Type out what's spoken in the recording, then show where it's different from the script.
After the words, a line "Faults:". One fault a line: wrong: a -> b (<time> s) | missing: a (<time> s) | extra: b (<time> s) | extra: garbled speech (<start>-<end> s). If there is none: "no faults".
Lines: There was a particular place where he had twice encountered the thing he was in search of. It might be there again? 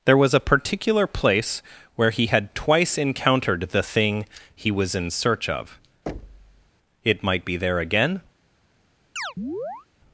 There was a particular place where he had twice encountered the thing he was in search of. It might be there again?
Faults:
no faults